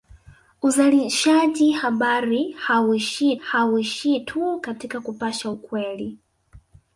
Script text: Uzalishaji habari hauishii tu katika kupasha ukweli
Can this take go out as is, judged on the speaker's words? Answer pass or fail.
fail